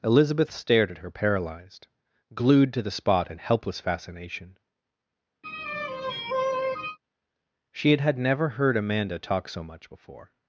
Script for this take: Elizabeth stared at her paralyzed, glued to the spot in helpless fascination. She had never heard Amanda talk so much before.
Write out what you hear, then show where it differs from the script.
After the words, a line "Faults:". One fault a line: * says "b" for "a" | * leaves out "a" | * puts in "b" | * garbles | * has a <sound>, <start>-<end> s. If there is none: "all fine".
Elizabeth stared at her paralyzed, glued to the spot in helpless fascination. She had had never heard Amanda talk so much before.
Faults:
* has a sigh, 5.4-7.0 s
* puts in "had"